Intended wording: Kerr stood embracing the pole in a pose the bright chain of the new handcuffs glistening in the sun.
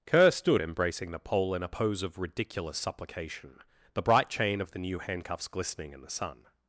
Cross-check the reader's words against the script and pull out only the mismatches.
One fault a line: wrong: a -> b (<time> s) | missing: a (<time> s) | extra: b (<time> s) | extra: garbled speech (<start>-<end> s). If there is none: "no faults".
extra: of ridiculous supplication (2.0 s)